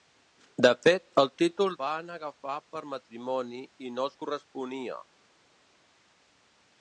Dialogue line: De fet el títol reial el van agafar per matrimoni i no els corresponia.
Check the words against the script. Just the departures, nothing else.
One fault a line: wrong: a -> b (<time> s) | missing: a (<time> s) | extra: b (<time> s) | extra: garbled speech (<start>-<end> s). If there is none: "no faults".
missing: reial el (1.8 s)